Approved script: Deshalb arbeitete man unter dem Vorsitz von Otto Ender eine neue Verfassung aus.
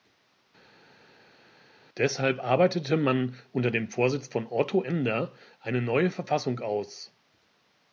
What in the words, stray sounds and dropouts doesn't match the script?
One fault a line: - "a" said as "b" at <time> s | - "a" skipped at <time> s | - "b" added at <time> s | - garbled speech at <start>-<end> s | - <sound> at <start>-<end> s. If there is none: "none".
none